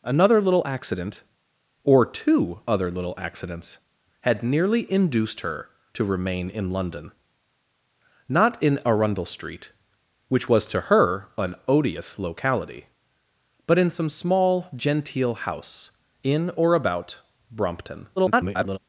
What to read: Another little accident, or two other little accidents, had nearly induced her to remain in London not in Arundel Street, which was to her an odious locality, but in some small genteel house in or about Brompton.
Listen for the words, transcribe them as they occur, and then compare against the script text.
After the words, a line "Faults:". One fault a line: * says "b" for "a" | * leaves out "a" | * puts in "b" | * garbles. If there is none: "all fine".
Another little accident, or two other little accidents, had nearly induced her to remain in London not in Arundel Street, which was to her an odious locality, but in some small genteel house in or about Brompton. [garbled]
Faults:
* garbles